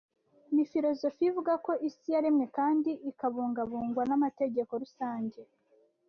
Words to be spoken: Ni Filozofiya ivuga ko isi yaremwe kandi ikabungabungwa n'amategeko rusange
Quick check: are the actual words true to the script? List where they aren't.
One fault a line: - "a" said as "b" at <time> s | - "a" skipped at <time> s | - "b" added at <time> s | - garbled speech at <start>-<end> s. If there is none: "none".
none